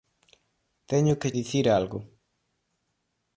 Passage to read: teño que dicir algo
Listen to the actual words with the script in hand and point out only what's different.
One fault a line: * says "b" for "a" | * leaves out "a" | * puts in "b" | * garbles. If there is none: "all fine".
all fine